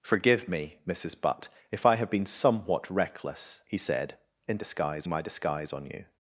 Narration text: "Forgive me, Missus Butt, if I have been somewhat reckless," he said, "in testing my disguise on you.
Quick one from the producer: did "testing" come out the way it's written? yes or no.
no